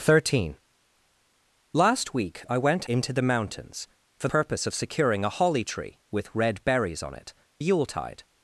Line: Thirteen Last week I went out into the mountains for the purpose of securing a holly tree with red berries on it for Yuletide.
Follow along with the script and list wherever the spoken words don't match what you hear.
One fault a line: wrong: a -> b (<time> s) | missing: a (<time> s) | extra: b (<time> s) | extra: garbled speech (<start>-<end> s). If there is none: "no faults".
missing: out (2.9 s)
missing: the (4.3 s)
missing: for (7.3 s)